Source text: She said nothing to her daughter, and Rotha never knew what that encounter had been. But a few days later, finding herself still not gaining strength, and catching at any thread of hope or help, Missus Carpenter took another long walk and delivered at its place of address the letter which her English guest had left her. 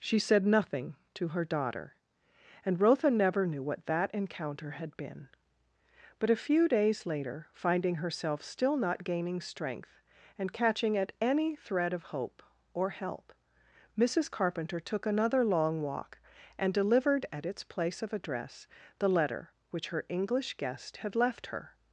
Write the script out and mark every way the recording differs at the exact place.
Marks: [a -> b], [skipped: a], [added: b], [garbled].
She said nothing to her daughter, and Rotha never knew what that encounter had been. But a few days later, finding herself still not gaining strength, and catching at any thread of hope or help, Missus Carpenter took another long walk and delivered at its place of address the letter which her English guest had left her.